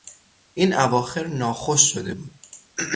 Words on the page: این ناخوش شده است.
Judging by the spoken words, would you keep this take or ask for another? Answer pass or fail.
fail